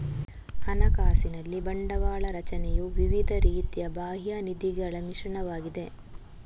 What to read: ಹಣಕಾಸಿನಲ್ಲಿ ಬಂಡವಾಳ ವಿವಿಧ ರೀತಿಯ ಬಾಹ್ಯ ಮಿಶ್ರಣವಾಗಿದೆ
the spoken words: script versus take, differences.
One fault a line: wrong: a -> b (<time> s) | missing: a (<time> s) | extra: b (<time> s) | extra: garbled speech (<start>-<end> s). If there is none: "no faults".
extra: ರಚನೆಯು (2.4 s)
extra: ನಿಧಿಗಳ (4.5 s)